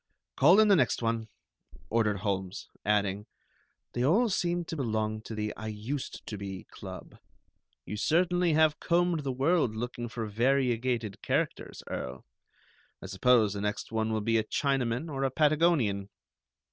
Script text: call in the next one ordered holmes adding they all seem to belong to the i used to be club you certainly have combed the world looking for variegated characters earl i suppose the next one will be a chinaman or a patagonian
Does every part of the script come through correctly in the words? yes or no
yes